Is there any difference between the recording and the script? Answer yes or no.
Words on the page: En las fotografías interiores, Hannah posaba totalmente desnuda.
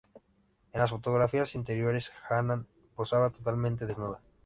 no